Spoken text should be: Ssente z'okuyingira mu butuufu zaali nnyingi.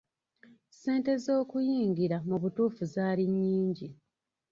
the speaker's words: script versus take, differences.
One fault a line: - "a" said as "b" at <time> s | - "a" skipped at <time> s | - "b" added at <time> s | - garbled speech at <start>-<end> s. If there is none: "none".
none